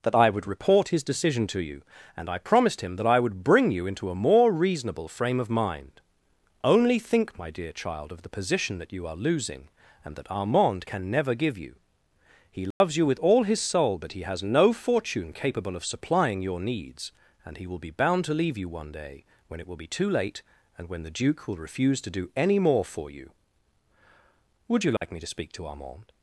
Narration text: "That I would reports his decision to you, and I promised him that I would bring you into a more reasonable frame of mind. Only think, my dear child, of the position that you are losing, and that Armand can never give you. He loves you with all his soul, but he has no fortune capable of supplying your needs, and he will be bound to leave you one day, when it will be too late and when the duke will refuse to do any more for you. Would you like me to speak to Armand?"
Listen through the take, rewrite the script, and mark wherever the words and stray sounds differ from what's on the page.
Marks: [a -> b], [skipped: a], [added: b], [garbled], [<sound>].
"That I would [reports -> report] his decision to you, and I promised him that I would bring you into a more reasonable frame of mind. Only think, my dear child, of the position that you are losing, and that Armand can never give you. He loves [dropout] you with all his soul, but he has no fortune capable of supplying your needs, and he will be bound to leave you one day, when it will be too late and when the duke will refuse to do any more for you. Would you like [dropout] me to speak to Armand?"